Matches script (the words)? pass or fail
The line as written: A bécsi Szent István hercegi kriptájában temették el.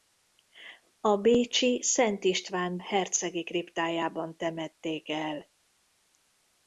pass